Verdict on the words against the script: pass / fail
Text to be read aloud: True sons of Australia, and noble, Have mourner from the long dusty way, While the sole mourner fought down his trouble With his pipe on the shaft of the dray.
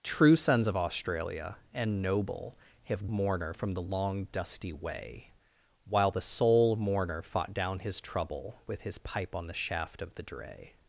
pass